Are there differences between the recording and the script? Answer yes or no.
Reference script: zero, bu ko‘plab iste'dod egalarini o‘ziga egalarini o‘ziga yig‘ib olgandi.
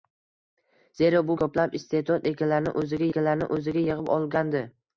no